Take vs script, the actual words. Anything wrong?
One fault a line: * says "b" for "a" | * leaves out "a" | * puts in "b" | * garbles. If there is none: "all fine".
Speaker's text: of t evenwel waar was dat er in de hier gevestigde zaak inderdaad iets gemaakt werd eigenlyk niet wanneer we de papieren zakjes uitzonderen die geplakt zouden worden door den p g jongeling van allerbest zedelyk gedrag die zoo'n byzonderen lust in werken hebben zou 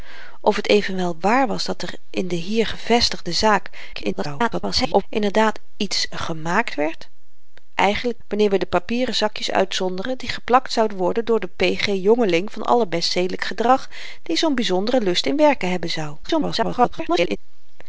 * garbles
* leaves out "niet"
* garbles